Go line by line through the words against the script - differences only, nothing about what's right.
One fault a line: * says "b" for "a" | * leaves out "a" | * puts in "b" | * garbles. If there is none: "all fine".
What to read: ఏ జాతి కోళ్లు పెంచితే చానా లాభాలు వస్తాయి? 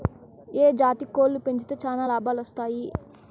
all fine